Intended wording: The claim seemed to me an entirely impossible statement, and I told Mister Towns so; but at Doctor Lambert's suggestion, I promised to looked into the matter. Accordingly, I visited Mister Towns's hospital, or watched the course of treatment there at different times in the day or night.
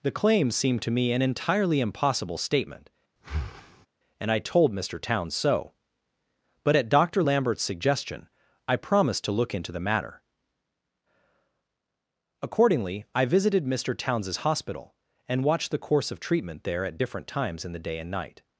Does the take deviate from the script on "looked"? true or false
true